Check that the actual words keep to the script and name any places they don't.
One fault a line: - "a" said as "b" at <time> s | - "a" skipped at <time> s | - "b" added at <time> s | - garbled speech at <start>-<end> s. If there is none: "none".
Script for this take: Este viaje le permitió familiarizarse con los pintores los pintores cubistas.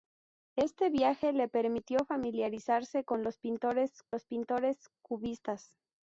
none